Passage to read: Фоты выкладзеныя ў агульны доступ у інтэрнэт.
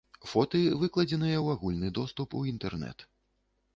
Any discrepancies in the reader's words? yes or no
no